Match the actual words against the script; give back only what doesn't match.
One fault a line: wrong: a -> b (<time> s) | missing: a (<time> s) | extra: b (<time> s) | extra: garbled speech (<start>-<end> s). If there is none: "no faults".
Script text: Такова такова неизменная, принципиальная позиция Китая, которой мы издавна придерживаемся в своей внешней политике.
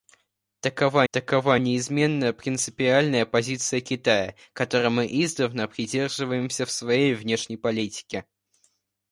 no faults